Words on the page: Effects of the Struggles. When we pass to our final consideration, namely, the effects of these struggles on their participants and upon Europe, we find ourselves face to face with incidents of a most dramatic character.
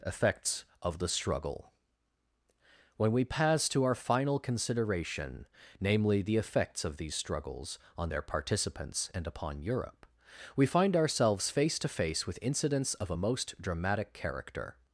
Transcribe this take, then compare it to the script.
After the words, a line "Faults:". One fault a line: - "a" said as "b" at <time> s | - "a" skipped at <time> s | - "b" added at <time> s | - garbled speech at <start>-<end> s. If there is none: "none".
Effects of the Struggle. When we pass to our final consideration, namely, the effects of these struggles on their participants and upon Europe, we find ourselves face to face with incidents of a most dramatic character.
Faults:
- "Struggles" said as "Struggle" at 1.1 s